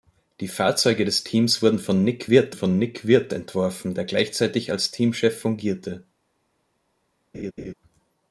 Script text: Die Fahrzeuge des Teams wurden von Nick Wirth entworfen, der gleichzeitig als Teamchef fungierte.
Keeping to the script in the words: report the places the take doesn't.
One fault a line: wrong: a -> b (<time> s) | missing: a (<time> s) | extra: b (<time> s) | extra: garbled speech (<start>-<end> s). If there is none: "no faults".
extra: von Nick Wirth (2.5 s)